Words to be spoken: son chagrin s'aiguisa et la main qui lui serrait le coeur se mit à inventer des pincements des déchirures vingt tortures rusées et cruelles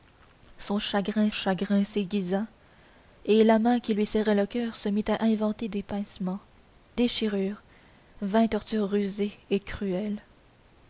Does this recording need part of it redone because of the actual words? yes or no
yes